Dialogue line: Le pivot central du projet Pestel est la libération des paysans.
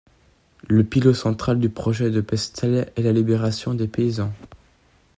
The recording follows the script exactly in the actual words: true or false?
false